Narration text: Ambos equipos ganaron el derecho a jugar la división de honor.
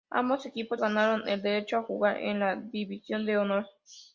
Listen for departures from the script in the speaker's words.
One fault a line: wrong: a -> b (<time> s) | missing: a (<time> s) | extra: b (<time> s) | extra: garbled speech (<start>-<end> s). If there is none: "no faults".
extra: en (2.2 s)